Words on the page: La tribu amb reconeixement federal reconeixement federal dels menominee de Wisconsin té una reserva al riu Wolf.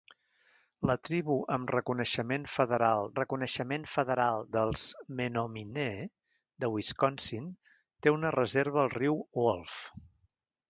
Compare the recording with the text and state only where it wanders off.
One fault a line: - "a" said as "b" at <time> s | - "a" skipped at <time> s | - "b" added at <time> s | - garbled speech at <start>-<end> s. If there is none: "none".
none